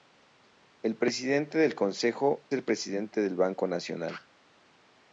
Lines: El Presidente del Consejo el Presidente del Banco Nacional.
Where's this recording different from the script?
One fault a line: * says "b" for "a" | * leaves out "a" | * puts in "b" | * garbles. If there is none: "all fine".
all fine